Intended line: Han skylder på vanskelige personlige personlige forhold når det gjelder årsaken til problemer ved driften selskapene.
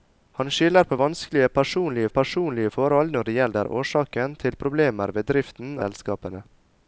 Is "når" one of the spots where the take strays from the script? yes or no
no